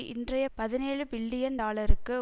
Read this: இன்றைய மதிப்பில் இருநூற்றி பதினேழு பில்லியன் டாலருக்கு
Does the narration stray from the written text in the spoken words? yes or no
yes